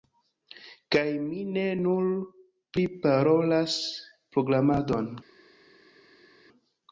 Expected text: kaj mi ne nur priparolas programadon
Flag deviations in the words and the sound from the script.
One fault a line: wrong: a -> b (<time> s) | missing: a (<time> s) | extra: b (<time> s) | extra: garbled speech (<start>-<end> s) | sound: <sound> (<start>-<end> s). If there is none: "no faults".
no faults